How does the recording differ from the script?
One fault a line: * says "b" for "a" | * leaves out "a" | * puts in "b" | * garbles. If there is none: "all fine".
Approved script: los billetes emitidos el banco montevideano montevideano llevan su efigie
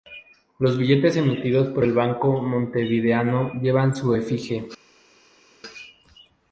* puts in "por"
* leaves out "montevideano"